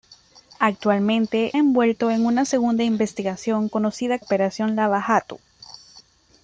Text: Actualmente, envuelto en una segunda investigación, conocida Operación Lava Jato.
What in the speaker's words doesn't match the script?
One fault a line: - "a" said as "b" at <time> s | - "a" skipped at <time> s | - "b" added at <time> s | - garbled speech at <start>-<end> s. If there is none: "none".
none